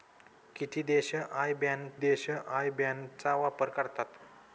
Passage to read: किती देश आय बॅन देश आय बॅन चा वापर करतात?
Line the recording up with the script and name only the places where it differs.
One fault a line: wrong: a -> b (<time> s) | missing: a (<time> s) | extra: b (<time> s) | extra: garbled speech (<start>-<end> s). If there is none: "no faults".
no faults